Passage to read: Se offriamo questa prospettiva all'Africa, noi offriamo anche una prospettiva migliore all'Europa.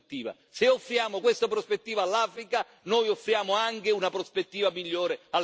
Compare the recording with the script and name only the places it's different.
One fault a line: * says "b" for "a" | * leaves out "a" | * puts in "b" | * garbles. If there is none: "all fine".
all fine